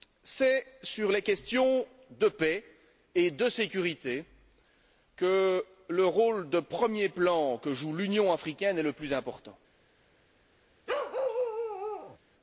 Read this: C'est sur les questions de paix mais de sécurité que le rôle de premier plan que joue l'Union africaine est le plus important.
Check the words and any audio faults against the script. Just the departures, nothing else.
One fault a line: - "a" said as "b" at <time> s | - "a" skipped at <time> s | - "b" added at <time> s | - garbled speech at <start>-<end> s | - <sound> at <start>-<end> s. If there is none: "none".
- "mais" said as "et" at 3.1 s
- bark at 10.9-12.2 s